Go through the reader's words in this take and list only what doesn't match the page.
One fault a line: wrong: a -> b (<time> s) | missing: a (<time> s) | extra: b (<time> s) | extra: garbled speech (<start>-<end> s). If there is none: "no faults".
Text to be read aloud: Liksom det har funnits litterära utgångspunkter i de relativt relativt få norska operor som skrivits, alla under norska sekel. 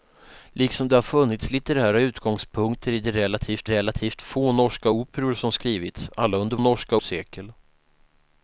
no faults